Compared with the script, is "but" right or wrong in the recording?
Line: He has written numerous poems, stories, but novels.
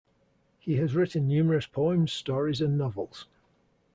wrong